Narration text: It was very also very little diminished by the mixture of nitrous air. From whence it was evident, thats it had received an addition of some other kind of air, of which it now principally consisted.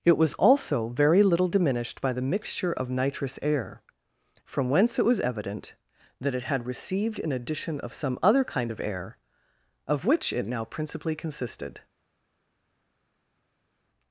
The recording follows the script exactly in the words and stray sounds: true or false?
false